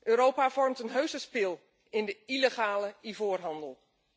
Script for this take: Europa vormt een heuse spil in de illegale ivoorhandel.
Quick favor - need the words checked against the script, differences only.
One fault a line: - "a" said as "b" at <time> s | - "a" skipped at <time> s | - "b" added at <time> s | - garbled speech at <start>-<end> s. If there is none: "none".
none